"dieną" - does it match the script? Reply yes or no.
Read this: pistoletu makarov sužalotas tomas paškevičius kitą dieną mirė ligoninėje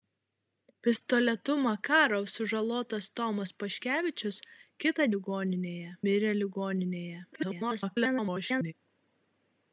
no